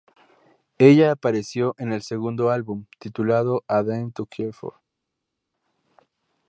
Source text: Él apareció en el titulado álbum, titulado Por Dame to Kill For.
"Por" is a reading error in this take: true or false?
true